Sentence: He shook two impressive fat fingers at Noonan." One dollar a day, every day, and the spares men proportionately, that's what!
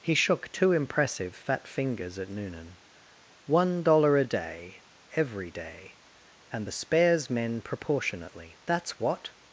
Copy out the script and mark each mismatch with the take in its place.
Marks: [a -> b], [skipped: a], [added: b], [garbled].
He shook two impressive fat fingers at Noonan." One dollar a day, every day, and the spares men proportionately, that's what!